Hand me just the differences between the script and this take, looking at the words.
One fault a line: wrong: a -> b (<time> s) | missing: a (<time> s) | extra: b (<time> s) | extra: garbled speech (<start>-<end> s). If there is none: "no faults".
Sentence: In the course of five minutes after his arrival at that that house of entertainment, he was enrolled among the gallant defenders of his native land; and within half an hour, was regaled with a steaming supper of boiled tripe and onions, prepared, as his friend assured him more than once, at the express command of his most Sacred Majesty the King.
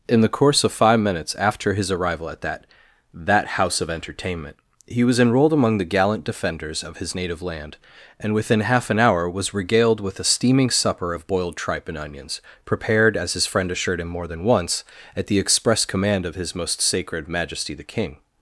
no faults